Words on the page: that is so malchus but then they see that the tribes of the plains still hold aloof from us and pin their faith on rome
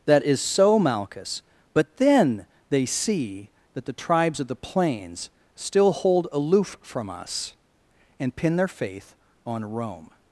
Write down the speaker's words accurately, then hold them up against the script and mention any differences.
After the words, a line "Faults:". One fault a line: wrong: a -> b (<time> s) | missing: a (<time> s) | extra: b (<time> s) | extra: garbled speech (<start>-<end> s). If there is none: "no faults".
that is so malchus but then they see that the tribes of the plains still hold aloof from us and pin their faith on rome
Faults:
no faults